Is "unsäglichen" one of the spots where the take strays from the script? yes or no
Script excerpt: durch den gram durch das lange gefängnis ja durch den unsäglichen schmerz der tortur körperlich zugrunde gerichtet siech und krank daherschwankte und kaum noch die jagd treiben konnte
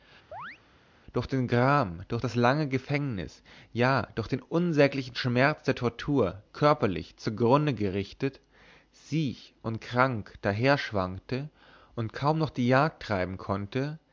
no